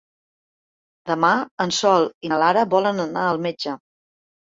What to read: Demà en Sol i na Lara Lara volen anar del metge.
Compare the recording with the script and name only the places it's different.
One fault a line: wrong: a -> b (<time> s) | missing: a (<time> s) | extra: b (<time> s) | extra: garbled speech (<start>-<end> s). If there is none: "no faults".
missing: Lara (2.6 s)
wrong: del -> al (3.3 s)